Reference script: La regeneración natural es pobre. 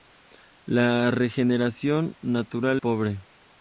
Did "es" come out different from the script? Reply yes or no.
yes